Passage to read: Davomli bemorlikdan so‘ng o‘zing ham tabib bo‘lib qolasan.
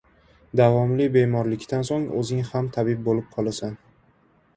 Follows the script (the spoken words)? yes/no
yes